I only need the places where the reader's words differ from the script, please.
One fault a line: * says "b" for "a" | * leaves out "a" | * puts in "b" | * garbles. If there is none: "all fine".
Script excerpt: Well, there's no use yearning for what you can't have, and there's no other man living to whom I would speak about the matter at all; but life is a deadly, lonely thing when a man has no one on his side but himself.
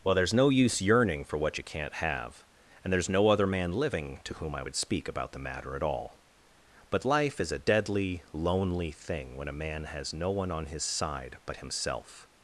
all fine